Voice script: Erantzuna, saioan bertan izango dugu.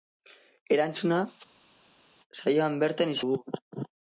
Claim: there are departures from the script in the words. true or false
true